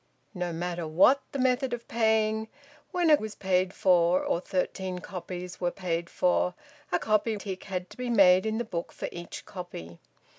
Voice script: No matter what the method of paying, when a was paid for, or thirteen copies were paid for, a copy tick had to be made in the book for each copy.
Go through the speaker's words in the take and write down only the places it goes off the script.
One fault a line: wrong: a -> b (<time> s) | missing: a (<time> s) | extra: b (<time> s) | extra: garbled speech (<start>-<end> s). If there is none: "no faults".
no faults